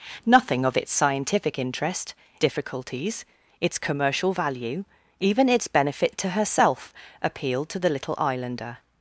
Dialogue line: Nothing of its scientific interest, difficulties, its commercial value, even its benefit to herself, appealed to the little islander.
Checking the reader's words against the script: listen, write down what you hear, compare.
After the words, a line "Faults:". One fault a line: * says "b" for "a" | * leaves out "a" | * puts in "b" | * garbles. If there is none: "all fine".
Nothing of its scientific interest, difficulties, its commercial value, even its benefit to herself, appealed to the little islander.
Faults:
all fine